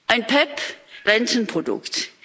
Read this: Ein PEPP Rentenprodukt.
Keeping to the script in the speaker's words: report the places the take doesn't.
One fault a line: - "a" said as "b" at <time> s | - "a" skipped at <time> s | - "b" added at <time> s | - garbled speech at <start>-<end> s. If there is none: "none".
none